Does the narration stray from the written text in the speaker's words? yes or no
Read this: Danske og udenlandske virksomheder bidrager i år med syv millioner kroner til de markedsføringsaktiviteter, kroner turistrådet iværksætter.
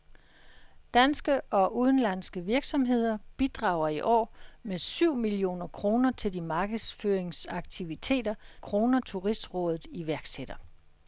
no